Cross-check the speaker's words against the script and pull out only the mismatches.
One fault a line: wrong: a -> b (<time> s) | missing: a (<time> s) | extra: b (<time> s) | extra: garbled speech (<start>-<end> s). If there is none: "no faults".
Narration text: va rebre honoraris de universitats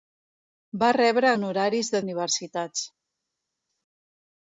no faults